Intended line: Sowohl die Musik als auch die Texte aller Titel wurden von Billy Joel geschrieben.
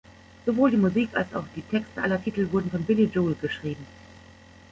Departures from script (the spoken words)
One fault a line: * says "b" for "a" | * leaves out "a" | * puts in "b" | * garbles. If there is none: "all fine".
all fine